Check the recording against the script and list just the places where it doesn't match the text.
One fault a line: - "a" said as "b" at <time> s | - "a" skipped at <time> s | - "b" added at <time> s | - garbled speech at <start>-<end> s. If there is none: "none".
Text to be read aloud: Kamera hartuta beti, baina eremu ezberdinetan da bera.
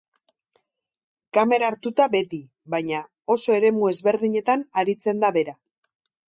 - "oso" added at 3.4 s
- "aritzen" added at 4.8 s